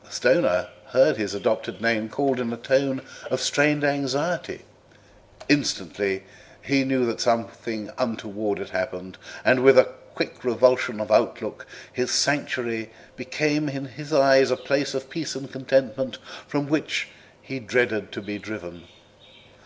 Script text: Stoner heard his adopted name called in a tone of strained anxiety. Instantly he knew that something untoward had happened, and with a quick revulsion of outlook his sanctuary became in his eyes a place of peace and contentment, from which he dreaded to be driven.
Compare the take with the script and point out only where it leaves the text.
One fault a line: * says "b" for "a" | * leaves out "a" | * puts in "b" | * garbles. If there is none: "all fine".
all fine